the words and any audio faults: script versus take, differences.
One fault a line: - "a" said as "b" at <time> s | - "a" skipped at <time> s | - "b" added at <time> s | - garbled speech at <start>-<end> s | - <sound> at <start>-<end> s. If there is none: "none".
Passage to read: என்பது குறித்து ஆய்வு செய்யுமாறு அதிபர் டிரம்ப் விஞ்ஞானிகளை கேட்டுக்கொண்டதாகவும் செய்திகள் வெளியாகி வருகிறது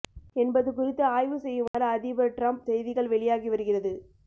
- dropout at 1.7-1.7 s
- "விஞ்ஞானிகளை கேட்டுக்கொண்டதாகவும்" skipped at 2.6 s